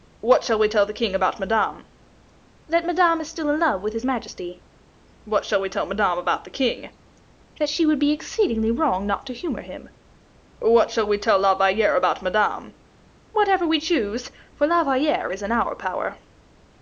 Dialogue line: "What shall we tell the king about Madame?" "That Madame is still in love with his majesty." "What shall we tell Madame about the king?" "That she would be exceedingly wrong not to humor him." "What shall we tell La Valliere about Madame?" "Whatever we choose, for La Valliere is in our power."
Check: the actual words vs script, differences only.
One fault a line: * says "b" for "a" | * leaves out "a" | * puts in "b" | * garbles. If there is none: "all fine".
all fine